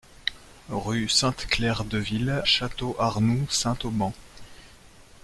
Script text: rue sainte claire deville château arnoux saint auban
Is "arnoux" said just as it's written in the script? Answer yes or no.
yes